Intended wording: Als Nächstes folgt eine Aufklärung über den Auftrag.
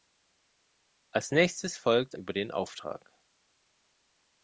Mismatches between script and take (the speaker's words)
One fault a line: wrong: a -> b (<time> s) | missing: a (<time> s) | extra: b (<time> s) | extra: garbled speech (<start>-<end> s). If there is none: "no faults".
missing: eine Aufklärung (2.2 s)